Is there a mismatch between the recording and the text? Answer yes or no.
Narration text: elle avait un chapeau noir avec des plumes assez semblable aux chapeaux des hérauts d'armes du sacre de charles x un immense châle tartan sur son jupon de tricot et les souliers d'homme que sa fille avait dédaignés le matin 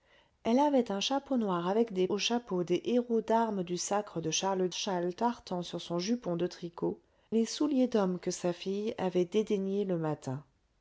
yes